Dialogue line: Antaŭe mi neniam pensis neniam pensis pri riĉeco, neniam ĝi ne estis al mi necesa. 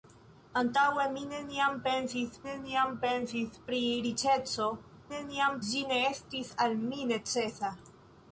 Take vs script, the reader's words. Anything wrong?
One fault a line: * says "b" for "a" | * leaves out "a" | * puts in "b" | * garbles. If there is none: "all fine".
all fine